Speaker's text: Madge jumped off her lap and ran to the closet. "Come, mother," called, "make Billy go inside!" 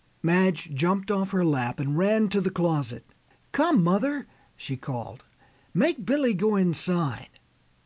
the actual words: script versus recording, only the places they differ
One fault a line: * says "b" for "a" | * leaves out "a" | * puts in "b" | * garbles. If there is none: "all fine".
* puts in "she"